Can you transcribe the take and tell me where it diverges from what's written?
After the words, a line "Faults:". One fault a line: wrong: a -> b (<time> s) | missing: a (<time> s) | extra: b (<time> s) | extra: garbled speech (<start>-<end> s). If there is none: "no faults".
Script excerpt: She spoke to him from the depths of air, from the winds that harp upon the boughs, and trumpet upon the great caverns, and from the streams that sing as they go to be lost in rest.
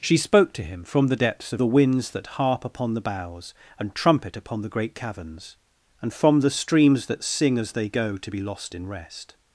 She spoke to him from the depths of the winds that harp upon the boughs, and trumpet upon the great caverns, and from the streams that sing as they go to be lost in rest.
Faults:
missing: air from (1.6 s)